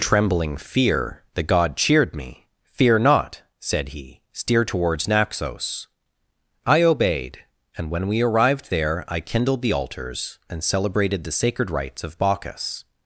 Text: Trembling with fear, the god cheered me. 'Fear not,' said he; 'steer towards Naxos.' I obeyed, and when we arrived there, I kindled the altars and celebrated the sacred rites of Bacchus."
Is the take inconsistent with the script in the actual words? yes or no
yes